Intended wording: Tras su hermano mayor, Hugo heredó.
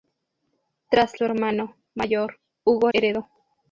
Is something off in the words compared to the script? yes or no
no